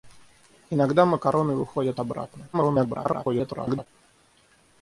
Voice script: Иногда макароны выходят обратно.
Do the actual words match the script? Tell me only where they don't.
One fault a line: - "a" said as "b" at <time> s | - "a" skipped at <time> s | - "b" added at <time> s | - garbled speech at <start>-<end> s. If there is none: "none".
- garbled speech at 2.5-3.9 s